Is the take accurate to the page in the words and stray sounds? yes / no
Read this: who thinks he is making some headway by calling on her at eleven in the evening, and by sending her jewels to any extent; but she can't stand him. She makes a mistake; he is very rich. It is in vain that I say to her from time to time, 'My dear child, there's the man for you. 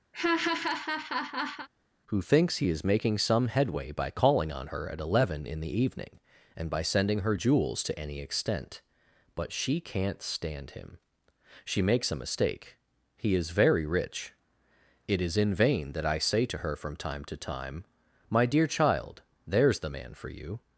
no